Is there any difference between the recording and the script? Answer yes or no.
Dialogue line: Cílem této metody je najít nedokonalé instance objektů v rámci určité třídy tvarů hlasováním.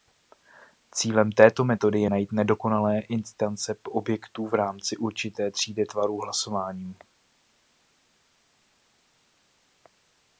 no